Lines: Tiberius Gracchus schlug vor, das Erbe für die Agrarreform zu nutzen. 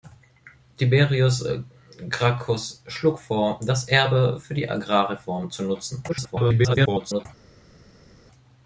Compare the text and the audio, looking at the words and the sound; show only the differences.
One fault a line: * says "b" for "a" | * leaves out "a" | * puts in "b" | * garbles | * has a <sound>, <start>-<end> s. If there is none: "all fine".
* garbles